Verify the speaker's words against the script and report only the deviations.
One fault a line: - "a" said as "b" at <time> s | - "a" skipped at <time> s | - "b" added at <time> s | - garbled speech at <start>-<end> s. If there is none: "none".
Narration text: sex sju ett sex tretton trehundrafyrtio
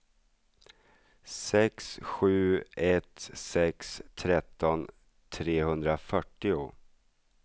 none